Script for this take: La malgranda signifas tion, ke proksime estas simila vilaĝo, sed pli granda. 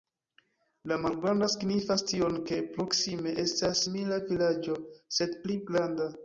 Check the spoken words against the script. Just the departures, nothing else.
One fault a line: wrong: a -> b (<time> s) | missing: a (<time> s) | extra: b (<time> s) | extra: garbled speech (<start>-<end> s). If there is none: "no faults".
no faults